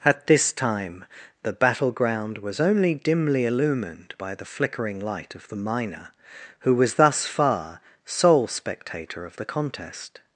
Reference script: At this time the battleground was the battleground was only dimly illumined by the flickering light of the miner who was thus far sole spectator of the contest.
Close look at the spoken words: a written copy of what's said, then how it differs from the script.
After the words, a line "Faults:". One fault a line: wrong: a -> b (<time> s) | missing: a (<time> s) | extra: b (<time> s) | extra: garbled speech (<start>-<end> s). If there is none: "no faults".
At this time the battleground was only dimly illumined by the flickering light of the miner who was thus far sole spectator of the contest.
Faults:
missing: the battleground was (2.6 s)